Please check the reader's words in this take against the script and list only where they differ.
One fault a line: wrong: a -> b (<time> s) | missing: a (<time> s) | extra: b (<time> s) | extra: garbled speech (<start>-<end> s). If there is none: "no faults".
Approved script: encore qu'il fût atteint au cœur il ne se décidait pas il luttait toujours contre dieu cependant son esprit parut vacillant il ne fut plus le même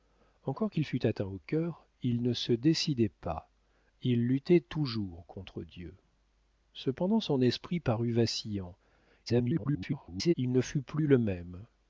extra: garbled speech (9.3-10.3 s)